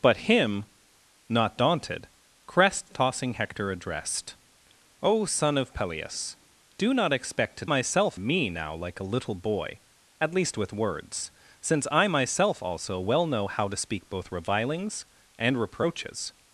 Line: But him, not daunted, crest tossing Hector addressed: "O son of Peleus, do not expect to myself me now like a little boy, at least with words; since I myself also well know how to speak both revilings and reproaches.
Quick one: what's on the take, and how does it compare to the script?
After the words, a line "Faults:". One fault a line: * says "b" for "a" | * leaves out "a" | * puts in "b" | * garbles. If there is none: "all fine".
But him, not daunted, crest tossing Hector addressed: "O son of Peleus, do not expect to myself me now like a little boy, at least with words; since I myself also well know how to speak both revilings and reproaches.
Faults:
all fine